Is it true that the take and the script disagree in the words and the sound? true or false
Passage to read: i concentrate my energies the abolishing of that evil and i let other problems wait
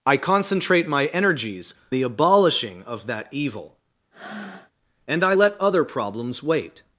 true